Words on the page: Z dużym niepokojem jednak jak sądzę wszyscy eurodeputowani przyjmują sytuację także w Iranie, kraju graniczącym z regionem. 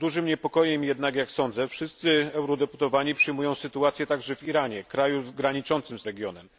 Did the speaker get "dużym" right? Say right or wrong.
right